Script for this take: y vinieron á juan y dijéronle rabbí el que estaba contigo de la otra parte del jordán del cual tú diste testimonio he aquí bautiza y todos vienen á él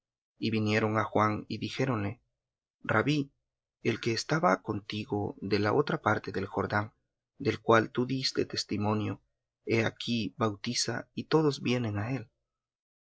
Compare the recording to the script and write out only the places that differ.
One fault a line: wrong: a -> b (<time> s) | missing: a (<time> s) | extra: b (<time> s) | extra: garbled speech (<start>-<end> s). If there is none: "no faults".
no faults